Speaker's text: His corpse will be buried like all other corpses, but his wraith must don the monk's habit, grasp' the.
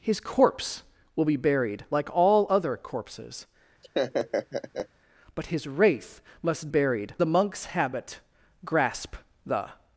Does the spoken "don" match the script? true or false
false